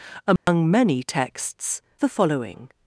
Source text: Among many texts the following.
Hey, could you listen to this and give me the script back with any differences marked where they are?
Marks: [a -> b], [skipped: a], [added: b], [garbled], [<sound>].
Among [dropout] many texts the following.